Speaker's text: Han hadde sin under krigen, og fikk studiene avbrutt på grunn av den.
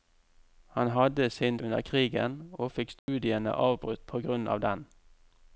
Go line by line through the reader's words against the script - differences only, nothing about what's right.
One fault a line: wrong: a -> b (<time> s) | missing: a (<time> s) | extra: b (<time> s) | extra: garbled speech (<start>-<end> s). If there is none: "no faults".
no faults